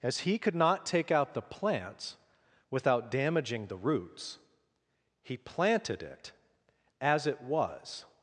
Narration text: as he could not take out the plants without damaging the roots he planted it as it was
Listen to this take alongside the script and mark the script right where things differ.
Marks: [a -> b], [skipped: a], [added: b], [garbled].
as he could not take out the plants without damaging the roots he planted it as it was